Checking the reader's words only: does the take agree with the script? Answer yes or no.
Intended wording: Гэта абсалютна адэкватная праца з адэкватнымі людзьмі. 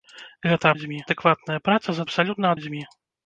no